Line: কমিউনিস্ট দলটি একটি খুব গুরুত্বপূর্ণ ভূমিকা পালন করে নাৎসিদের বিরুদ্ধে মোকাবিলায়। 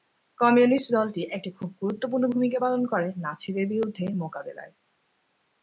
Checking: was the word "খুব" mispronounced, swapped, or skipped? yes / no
no